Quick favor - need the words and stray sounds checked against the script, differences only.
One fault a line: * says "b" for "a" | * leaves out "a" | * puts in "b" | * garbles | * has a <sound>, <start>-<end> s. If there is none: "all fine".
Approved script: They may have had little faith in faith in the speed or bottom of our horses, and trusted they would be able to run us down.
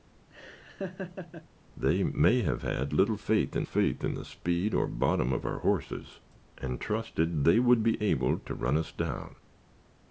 * has a laugh, 0.3-1.5 s